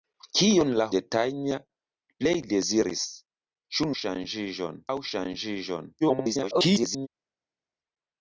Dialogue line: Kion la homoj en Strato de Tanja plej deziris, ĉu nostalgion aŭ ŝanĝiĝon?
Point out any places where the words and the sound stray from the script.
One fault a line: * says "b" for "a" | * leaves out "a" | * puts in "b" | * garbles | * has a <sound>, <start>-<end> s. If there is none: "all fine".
* leaves out "homoj en Strato"
* says "ŝanĝiĝon" for "nostalgion"
* garbles